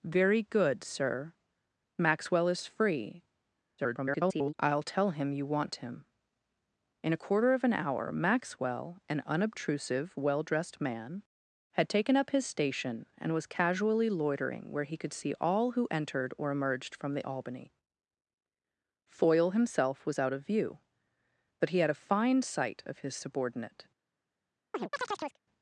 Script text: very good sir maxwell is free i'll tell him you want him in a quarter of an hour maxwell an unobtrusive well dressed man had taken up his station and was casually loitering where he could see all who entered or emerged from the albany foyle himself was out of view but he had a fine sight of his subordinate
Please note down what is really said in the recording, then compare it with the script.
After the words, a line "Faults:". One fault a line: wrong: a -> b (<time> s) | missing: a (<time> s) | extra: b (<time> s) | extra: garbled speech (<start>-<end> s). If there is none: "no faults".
very good sir maxwell is free [garbled] i'll tell him you want him in a quarter of an hour maxwell an unobtrusive well dressed man had taken up his station and was casually loitering where he could see all who entered or emerged from the albany foyle himself was out of view but he had a fine sight of his subordinate
Faults:
extra: garbled speech (3.8-4.5 s)